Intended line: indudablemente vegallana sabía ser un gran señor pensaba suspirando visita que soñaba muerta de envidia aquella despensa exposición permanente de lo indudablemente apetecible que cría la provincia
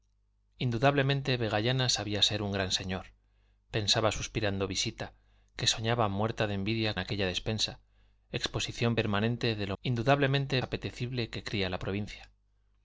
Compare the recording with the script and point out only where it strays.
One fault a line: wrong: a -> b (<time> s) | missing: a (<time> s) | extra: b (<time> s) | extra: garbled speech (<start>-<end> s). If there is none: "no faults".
no faults